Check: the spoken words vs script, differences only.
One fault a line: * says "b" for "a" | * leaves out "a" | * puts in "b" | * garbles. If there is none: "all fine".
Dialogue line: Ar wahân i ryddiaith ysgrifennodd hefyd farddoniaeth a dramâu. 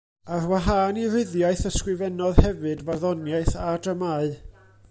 all fine